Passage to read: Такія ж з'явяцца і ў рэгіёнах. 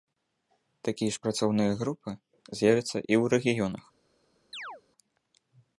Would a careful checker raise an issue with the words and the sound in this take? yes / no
yes